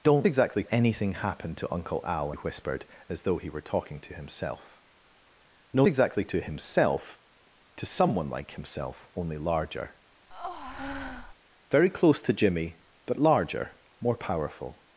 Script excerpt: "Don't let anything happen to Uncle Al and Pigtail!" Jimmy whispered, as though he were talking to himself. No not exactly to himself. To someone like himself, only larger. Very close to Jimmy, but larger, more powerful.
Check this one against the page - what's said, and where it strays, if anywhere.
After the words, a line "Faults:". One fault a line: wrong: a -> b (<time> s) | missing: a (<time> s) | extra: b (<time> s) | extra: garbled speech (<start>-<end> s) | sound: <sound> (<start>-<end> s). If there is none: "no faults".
"Don't exactly anything happen to Uncle Al whispered, as though he were talking to himself. No exactly to himself. To someone like himself, only larger. Very close to Jimmy, but larger, more powerful.
Faults:
wrong: let -> exactly (0.2 s)
missing: and Pigtail Jimmy (2.3 s)
missing: not (5.9 s)
sound: breath (10.3-11.3 s)